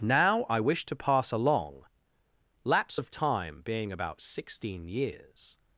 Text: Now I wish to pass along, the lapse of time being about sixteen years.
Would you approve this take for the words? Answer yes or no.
no